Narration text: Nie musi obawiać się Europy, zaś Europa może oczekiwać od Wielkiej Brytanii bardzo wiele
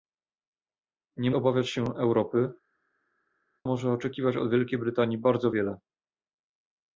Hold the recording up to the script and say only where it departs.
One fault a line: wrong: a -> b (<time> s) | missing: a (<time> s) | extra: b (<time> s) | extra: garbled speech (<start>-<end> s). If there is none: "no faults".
missing: musi (1.3 s)
missing: zaś Europa (2.5 s)